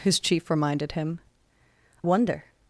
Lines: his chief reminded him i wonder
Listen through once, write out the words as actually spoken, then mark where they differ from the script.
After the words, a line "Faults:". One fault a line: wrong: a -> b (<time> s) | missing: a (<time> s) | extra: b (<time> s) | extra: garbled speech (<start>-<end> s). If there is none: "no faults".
his chief reminded him wonder
Faults:
missing: i (1.2 s)